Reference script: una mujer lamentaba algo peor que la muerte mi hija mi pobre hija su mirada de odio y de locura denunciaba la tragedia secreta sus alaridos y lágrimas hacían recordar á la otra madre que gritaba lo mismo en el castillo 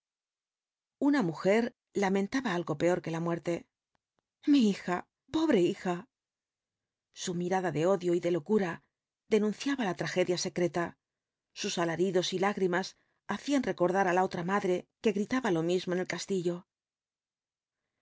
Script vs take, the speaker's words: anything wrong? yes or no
yes